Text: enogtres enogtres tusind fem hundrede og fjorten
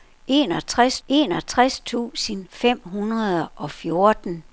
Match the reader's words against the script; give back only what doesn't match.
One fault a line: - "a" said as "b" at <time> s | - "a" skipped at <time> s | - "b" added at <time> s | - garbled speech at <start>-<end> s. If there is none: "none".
none